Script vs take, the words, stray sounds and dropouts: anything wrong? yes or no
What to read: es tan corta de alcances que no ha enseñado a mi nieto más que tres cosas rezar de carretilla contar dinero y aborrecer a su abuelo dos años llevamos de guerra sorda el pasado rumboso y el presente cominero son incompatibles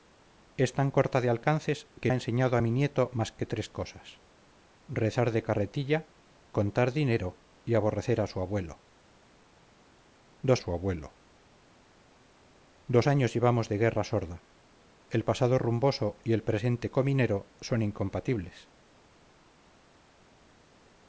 yes